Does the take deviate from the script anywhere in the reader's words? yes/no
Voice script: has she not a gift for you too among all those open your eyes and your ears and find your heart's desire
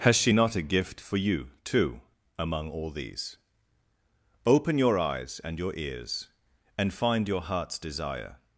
yes